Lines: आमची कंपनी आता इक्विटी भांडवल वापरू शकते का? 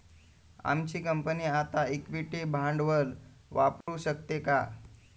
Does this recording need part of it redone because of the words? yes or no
no